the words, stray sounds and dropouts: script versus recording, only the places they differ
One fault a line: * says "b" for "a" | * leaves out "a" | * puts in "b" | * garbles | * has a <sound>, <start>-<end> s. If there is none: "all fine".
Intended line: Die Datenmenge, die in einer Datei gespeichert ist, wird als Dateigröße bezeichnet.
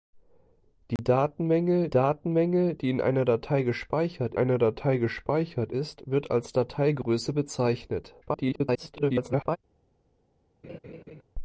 * has a dropout, 1.0-1.0 s
* puts in "Datenmenge"
* puts in "einer Datei gespeichert"
* garbles
* has a laugh, 10.6-11.2 s